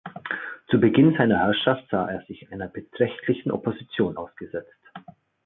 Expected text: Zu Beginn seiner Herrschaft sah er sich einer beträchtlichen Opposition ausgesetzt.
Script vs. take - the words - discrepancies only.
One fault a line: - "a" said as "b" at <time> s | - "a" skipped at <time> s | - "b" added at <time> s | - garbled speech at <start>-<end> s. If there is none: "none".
none